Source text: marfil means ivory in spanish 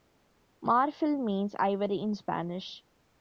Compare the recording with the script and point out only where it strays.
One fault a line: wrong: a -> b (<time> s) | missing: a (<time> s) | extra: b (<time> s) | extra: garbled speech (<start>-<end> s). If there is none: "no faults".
no faults